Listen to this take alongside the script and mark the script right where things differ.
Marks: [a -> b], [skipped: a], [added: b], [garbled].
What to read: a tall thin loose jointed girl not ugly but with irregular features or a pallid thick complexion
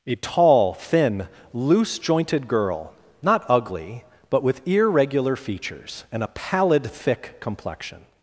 a tall thin loose jointed girl not ugly but with irregular features [or -> and] a pallid thick complexion